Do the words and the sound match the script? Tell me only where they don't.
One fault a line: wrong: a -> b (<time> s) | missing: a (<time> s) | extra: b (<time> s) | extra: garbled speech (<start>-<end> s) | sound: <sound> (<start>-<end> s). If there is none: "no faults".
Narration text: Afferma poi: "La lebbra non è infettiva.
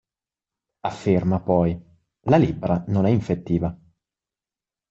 no faults